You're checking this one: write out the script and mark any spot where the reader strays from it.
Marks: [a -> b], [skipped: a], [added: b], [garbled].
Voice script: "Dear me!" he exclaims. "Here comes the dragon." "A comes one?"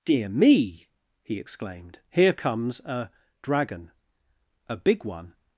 "Dear me!" he [exclaims. -> exclaimed] "Here comes [the -> a] dragon." "A [comes -> big] one?"